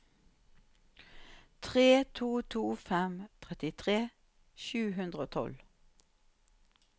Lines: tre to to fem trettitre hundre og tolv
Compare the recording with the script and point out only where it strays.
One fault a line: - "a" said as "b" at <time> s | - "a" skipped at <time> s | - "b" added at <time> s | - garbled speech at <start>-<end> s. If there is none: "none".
- "sju" added at 4.7 s